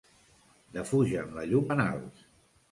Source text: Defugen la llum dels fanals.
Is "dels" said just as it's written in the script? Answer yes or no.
no